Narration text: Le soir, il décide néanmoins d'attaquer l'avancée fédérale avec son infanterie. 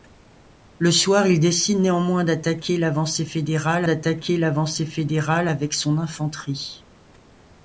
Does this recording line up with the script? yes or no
no